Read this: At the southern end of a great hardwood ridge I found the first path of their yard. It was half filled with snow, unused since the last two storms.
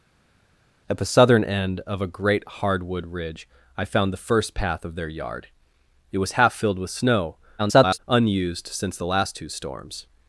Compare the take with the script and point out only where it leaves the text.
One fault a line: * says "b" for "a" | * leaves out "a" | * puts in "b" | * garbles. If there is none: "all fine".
* garbles